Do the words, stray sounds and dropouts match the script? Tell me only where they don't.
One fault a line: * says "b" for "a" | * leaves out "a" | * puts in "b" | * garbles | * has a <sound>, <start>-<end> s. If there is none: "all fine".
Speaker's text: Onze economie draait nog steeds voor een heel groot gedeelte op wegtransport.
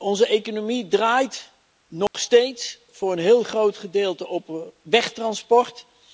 * has a dropout, 2.1-2.1 s